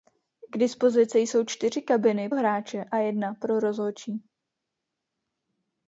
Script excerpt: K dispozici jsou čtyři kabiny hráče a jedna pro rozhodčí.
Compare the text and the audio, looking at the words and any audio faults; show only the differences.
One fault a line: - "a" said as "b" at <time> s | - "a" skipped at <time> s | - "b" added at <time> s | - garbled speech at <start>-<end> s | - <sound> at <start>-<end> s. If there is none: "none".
none